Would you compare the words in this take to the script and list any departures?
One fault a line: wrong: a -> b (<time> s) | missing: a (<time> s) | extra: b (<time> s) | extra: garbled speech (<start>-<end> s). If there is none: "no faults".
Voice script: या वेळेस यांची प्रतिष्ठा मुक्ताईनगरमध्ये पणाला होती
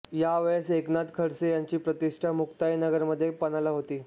extra: एकनाथ खडसे (0.7 s)